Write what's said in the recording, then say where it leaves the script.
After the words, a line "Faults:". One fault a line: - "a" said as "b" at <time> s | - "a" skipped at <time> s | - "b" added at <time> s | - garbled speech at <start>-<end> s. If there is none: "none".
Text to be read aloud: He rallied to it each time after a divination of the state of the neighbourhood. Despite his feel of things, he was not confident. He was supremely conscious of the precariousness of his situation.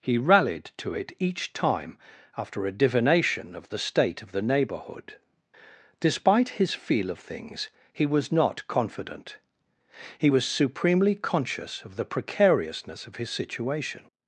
He rallied to it each time after a divination of the state of the neighbourhood. Despite his feel of things, he was not confident. He was supremely conscious of the precariousness of his situation.
Faults:
none